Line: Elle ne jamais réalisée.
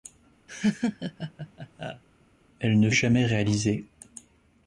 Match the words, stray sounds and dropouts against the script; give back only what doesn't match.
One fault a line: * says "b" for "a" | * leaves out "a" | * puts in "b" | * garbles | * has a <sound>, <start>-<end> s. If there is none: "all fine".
* has a laugh, 0.5-2.0 s